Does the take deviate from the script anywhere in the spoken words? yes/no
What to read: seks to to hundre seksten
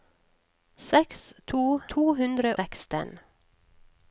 no